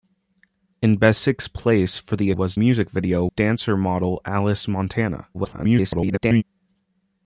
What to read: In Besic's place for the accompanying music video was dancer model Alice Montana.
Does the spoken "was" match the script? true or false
false